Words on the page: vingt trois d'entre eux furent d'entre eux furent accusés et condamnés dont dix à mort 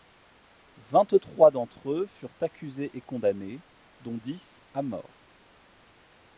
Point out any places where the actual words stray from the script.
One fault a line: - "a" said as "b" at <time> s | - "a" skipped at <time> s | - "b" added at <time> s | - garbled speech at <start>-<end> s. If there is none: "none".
- "d'entre eux furent" skipped at 2.3 s